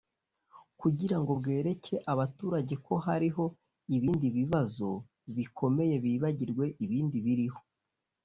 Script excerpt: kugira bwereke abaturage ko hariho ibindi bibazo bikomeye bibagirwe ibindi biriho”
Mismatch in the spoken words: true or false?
true